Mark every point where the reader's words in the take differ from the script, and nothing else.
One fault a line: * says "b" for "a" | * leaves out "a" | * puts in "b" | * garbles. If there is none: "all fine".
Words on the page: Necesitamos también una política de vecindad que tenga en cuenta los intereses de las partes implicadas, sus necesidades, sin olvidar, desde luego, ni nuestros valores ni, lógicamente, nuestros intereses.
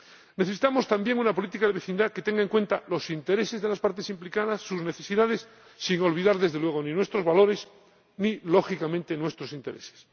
all fine